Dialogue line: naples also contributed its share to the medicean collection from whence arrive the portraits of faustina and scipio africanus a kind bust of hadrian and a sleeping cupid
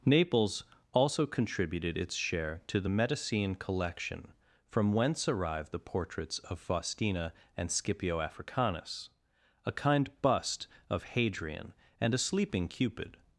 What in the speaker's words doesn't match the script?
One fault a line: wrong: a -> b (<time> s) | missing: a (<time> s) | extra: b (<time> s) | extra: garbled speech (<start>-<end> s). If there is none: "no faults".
no faults